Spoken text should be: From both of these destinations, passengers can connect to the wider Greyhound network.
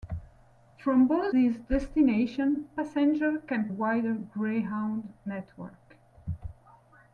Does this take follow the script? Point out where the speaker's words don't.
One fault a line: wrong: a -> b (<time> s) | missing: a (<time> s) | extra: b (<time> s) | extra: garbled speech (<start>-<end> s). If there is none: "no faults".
missing: of (1.4 s)
missing: connect to the (3.7 s)